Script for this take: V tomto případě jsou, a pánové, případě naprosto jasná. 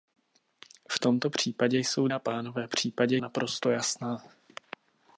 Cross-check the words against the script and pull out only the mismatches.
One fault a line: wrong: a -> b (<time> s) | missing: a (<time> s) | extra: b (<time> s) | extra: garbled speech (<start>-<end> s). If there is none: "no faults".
no faults